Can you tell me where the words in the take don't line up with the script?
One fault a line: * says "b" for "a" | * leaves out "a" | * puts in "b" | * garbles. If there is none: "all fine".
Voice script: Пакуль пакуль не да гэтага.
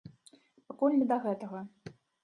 * leaves out "пакуль"